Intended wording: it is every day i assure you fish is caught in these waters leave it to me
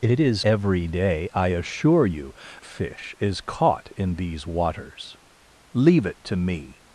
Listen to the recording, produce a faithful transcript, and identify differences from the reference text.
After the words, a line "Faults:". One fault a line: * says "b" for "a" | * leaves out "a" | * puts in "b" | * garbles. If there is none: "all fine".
it is every day i assure you fish is caught in these waters leave it to me
Faults:
all fine